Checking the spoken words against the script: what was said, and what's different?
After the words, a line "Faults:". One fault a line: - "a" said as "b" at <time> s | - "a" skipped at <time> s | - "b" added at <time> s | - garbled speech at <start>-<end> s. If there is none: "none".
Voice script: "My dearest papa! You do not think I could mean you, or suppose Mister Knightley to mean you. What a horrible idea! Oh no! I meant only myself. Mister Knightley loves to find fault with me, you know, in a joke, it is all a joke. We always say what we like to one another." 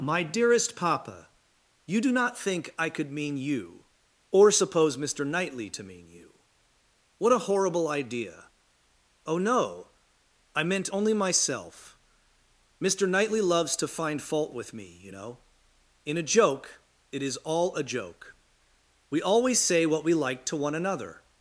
"My dearest papa! You do not think I could mean you, or suppose Mister Knightley to mean you. What a horrible idea! Oh no! I meant only myself. Mister Knightley loves to find fault with me, you know, in a joke, it is all a joke. We always say what we like to one another."
Faults:
none